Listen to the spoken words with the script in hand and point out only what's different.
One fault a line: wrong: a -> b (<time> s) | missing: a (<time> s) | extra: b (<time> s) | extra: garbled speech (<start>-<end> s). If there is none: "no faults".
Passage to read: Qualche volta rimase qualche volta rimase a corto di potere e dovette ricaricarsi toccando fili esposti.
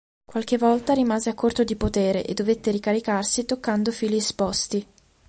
missing: qualche volta rimase (1.3 s)